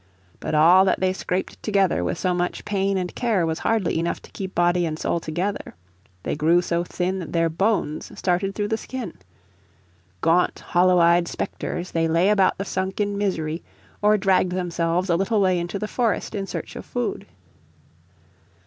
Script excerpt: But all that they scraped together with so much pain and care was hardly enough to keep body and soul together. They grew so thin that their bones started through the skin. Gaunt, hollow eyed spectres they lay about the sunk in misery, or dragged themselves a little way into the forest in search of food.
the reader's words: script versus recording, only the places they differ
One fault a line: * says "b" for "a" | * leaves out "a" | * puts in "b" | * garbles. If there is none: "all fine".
all fine